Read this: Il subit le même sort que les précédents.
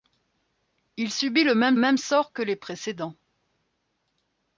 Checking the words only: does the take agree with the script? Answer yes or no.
no